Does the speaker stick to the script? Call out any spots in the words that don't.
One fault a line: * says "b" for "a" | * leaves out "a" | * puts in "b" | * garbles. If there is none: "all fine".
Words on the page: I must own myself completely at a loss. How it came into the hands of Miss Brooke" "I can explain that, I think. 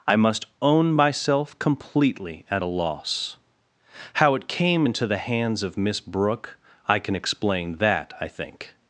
all fine